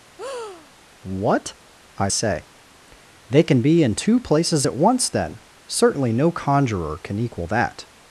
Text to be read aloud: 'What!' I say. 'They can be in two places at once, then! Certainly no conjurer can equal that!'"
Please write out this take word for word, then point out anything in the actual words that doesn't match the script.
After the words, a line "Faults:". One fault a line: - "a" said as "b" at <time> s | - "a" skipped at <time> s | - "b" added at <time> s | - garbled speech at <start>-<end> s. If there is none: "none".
'What!' I say. 'They can be in two places at once, then! Certainly no conjurer can equal that!'"
Faults:
none